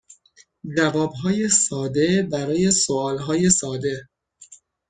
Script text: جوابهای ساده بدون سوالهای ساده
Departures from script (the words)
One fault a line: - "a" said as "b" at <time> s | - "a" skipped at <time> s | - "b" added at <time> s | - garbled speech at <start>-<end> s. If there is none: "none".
- "بدون" said as "برای" at 2.3 s